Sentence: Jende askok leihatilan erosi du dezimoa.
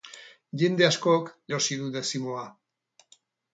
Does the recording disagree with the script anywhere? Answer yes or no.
yes